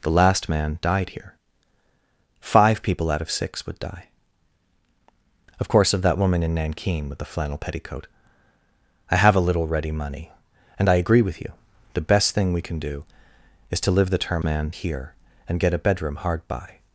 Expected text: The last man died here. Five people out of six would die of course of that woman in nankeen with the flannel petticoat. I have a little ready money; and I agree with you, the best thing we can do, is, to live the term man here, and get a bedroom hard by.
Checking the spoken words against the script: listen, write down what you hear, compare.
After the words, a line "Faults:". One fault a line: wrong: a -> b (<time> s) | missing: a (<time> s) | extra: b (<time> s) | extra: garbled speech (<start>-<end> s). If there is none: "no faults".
The last man died here. Five people out of six would die of course of that woman in nankeen with the flannel petticoat. I have a little ready money; and I agree with you, the best thing we can do, is, to live the term man here, and get a bedroom hard by.
Faults:
no faults